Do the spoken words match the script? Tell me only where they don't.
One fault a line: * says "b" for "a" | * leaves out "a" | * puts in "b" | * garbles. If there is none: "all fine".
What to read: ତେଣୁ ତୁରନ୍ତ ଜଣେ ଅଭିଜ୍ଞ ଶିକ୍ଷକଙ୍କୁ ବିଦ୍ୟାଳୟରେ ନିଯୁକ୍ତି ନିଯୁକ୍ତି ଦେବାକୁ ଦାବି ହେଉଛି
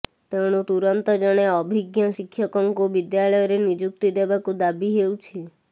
* leaves out "ନିଯୁକ୍ତି"